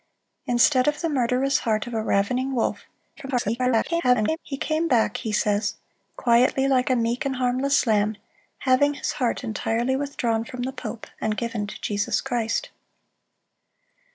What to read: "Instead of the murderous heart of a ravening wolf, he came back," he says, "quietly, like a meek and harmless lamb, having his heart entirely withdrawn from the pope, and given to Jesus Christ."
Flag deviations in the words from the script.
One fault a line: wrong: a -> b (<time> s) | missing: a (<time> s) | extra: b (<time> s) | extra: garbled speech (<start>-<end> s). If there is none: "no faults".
extra: garbled speech (3.2-4.4 s)